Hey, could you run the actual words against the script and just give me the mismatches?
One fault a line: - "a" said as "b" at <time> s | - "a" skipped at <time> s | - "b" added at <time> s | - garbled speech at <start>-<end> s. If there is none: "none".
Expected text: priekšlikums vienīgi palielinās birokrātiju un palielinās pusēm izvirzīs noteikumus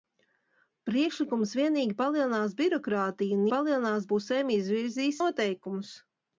none